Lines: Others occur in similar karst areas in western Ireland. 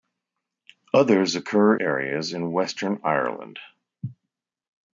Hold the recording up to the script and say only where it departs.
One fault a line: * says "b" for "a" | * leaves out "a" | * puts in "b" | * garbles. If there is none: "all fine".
* leaves out "in similar karst"